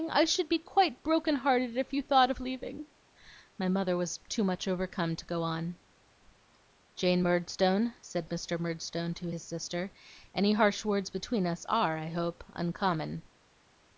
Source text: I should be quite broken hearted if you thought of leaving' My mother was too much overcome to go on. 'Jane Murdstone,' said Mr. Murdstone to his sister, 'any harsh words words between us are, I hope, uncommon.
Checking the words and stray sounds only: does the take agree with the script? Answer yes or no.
no